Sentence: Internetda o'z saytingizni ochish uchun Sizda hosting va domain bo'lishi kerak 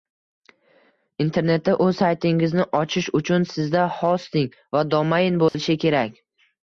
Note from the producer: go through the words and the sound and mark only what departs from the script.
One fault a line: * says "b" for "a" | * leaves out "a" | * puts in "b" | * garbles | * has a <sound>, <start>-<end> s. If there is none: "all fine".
* has a dropout, 5.5-5.5 s